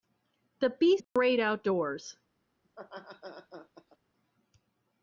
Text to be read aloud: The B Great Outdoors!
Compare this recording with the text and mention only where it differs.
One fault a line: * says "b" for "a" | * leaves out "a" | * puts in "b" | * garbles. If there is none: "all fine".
all fine